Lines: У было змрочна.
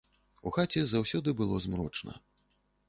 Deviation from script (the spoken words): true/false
true